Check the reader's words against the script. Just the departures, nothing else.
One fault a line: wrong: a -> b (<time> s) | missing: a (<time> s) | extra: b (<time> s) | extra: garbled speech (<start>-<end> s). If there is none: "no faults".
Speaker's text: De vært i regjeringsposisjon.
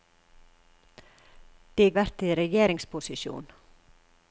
no faults